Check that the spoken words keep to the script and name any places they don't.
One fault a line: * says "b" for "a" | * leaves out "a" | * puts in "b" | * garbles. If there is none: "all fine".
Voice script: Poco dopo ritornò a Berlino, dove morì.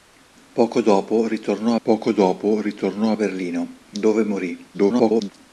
* puts in "poco dopo ritornò"
* garbles